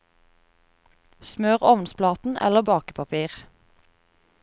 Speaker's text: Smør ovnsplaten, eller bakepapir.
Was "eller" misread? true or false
false